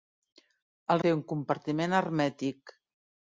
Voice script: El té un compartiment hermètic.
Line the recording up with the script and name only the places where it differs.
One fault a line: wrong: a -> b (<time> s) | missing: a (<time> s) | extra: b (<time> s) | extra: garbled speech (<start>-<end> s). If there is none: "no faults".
no faults